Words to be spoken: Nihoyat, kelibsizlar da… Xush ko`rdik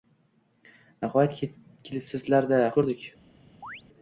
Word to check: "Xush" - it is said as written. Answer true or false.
false